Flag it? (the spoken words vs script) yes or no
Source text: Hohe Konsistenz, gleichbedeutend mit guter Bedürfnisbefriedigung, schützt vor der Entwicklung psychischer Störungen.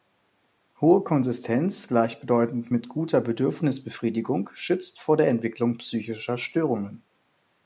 no